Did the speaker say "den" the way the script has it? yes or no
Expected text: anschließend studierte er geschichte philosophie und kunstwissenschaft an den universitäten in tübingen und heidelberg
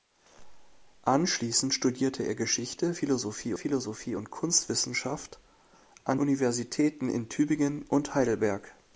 no